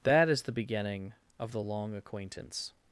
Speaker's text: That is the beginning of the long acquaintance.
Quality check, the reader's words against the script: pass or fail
pass